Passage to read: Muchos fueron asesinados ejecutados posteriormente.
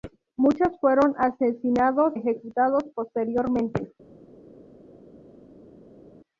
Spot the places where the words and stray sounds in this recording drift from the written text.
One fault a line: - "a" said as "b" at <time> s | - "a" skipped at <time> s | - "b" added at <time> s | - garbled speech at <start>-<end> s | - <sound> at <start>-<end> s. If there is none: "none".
none